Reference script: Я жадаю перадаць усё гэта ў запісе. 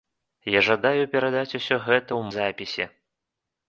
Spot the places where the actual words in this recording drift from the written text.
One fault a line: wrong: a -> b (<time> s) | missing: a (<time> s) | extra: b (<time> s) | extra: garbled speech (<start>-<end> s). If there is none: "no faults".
no faults